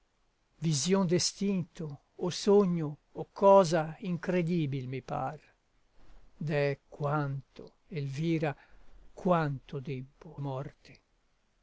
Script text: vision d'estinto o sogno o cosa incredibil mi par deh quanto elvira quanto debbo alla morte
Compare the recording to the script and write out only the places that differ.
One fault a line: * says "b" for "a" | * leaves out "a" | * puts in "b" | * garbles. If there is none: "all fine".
* leaves out "alla"